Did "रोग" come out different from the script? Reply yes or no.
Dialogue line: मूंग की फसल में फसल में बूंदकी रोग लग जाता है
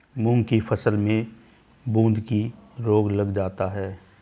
no